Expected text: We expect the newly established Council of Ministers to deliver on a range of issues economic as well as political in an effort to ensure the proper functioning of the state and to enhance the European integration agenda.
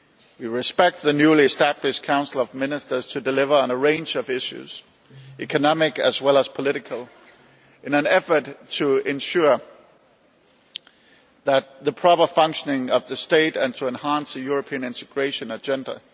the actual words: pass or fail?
pass